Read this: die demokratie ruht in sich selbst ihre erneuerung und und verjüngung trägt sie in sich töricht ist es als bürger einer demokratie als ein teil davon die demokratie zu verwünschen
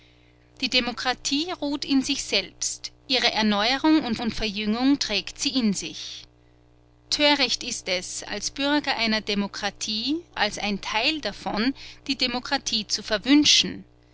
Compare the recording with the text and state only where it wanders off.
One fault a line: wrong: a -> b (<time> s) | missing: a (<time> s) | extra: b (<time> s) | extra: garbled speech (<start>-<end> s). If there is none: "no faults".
no faults